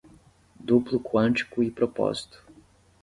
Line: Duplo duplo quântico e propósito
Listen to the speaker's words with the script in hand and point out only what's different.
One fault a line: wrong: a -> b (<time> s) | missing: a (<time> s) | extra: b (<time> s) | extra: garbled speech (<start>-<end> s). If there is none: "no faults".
missing: duplo (1.0 s)